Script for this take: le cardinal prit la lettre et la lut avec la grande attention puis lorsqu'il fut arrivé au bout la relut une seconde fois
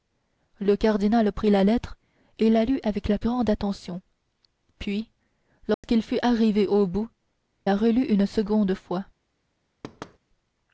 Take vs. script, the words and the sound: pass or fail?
fail